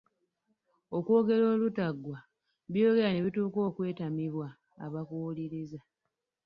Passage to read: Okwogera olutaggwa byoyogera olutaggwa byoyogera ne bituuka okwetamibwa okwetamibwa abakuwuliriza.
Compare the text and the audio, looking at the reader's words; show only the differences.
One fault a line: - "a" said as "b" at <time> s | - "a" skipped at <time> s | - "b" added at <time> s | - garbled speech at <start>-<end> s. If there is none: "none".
- "olutaggwa byoyogera" skipped at 3.1 s
- "okwetamibwa" skipped at 4.5 s